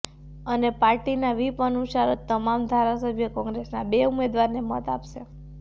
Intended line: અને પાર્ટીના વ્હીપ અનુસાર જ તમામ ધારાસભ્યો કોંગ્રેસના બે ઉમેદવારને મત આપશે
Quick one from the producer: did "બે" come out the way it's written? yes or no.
yes